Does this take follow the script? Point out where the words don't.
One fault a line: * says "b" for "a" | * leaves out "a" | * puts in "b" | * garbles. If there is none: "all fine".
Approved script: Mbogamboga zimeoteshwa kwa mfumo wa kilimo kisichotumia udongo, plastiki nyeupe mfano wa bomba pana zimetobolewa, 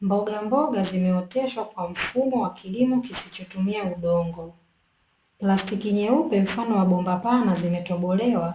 all fine